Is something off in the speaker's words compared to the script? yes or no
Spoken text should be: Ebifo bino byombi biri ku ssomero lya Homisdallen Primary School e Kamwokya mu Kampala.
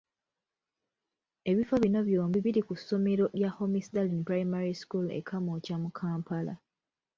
no